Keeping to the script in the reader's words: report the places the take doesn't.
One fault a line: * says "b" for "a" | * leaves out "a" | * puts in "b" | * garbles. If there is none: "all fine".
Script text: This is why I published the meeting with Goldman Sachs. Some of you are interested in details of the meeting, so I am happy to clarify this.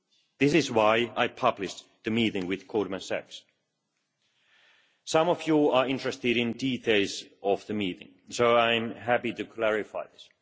all fine